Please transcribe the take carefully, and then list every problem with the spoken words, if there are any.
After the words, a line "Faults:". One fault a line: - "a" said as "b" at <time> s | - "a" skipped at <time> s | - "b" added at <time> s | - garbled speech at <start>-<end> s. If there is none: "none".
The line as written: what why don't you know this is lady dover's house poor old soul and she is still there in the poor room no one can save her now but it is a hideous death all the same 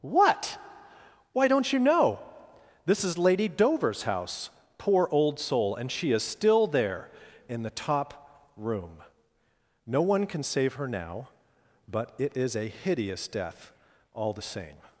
what why don't you know this is lady dover's house poor old soul and she is still there in the top room no one can save her now but it is a hideous death all the same
Faults:
- "poor" said as "top" at 7.7 s